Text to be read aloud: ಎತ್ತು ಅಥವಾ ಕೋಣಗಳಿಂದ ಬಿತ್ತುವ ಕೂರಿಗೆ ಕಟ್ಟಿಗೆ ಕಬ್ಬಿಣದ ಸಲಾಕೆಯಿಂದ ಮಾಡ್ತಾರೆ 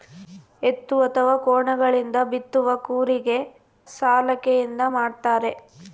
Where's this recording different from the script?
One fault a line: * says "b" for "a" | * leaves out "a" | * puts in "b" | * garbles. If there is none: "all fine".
* leaves out "ಕಟ್ಟಿಗೆ ಕಬ್ಬಿಣದ"